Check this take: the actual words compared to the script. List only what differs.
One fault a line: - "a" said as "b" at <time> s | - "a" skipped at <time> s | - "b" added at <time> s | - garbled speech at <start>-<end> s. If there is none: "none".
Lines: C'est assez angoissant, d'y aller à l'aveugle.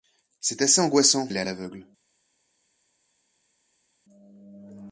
- "d'y" skipped at 1.3 s